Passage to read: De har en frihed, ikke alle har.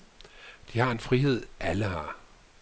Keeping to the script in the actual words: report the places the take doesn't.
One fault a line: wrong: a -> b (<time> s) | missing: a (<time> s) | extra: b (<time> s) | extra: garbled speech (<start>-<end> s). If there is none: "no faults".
missing: ikke (1.5 s)